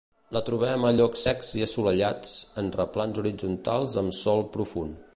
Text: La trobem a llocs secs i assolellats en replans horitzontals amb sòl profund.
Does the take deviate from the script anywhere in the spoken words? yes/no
no